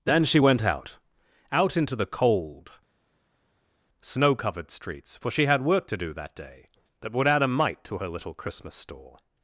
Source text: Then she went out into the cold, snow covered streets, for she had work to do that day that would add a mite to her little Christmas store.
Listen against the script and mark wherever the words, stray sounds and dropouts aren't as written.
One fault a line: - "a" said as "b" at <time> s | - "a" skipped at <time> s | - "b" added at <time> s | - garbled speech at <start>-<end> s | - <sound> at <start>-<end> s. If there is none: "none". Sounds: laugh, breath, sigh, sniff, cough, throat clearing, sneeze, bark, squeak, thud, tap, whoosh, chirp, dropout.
- "out" added at 1.5 s